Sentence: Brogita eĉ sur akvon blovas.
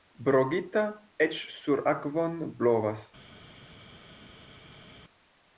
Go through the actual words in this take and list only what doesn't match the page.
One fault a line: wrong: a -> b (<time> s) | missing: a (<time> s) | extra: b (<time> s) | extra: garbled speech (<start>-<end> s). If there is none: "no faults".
no faults